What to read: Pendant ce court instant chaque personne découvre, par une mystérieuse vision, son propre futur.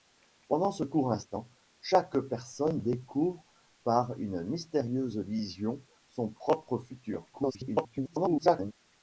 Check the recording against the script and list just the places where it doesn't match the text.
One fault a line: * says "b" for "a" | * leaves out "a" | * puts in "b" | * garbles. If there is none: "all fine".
* garbles